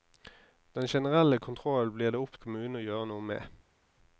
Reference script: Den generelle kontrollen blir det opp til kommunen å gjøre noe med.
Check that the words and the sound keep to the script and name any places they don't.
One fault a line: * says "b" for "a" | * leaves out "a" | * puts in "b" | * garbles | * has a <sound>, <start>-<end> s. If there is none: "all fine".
* leaves out "til"